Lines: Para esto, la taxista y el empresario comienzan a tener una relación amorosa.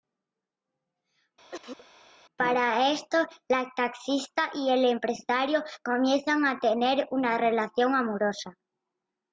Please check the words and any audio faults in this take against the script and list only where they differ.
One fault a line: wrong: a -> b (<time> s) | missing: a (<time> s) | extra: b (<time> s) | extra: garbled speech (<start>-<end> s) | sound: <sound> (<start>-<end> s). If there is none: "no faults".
sound: cough (1.5-1.9 s)